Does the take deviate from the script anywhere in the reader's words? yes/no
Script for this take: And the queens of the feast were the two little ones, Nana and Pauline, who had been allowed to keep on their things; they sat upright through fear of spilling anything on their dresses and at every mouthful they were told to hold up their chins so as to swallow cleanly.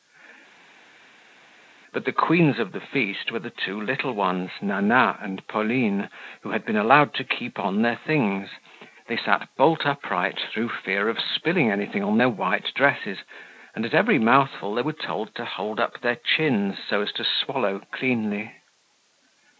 yes